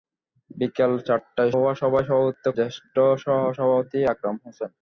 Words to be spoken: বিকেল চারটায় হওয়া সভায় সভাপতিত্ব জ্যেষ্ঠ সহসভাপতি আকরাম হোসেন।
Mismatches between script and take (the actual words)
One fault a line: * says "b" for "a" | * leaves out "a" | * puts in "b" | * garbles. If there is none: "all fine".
all fine